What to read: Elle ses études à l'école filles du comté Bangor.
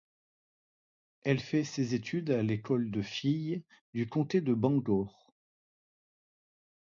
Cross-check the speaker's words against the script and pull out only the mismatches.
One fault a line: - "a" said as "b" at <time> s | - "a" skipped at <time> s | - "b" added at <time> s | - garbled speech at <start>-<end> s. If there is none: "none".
- "fait" added at 1.4 s
- "de" added at 2.9 s
- "de" added at 4.4 s